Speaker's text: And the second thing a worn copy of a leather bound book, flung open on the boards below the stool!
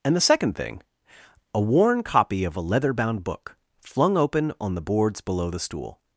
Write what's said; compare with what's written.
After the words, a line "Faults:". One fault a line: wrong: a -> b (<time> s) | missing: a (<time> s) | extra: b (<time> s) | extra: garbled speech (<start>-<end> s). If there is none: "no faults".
And the second thing a worn copy of a leather bound book, flung open on the boards below the stool!
Faults:
no faults